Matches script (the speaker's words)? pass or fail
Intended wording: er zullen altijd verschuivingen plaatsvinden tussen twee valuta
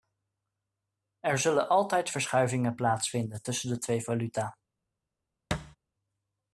fail